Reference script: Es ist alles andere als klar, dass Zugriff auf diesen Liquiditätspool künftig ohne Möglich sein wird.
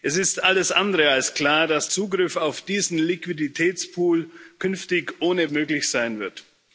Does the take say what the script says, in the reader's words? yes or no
yes